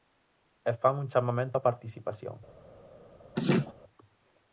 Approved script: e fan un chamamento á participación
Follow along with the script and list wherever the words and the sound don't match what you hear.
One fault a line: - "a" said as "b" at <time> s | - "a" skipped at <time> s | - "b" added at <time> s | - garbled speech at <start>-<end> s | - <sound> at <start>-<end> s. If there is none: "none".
- laugh at 3.4-3.7 s